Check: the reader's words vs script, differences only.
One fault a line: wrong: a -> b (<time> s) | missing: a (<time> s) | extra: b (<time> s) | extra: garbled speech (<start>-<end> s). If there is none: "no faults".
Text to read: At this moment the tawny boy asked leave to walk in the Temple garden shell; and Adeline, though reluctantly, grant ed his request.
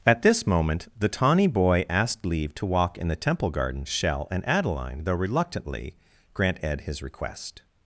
no faults